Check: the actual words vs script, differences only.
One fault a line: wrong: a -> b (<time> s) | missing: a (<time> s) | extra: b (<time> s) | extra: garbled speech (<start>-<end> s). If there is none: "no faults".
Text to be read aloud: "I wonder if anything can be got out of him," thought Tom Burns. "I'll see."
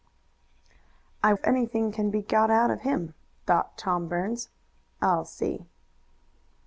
missing: wonder (1.3 s)